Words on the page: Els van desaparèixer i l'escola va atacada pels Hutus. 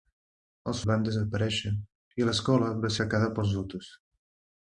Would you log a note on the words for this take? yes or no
no